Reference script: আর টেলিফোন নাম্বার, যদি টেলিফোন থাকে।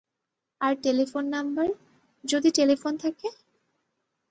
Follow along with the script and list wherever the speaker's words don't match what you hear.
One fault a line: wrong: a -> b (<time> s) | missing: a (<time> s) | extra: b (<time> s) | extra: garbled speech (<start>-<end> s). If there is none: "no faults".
no faults